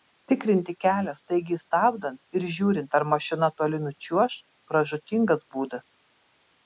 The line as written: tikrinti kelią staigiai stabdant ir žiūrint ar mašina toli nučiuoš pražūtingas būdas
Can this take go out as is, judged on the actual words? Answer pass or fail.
pass